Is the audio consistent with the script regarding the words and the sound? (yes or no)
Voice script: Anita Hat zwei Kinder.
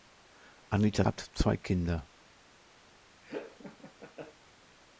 no